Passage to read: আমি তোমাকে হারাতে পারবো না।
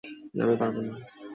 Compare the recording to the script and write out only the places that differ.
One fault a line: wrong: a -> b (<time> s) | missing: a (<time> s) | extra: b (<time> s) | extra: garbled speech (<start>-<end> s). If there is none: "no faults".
missing: তোমাকে হারাতে (0.6 s)